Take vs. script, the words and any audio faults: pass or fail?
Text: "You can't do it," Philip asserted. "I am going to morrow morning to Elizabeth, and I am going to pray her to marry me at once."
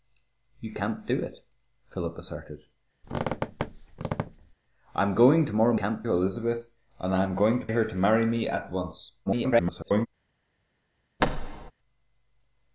fail